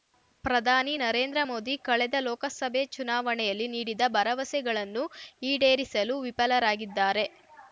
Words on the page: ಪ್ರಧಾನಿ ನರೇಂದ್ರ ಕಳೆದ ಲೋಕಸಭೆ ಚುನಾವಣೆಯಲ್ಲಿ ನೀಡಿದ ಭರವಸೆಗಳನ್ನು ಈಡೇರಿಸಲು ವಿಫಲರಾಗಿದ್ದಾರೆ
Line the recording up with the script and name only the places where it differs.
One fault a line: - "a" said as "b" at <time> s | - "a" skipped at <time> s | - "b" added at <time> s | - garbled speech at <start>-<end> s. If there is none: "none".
- "ಮೋದಿ" added at 1.4 s